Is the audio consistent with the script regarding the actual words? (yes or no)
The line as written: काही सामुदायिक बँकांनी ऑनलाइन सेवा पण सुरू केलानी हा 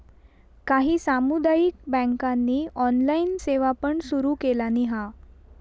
yes